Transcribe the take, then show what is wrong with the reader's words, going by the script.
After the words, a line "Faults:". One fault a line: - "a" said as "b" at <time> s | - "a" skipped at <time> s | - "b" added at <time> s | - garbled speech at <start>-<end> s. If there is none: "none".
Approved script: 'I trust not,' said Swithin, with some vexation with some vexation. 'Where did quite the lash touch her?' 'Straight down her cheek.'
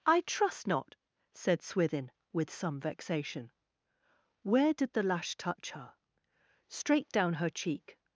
'I trust not,' said Swithin, with some vexation. 'Where did the lash touch her?' 'Straight down her cheek.'
Faults:
- "with some vexation" skipped at 3.5 s
- "quite" skipped at 4.9 s